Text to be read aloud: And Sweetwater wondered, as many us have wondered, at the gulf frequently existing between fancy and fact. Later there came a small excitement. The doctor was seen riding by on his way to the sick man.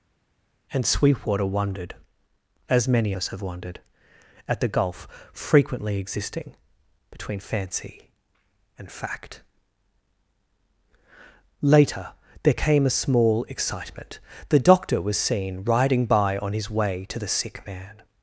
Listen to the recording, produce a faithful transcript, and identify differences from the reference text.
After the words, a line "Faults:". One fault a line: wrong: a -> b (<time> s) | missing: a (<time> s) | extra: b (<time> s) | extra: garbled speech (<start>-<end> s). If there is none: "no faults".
And Sweetwater wondered, as many us have wondered, at the gulf frequently existing between fancy and fact. Later there came a small excitement. The doctor was seen riding by on his way to the sick man.
Faults:
no faults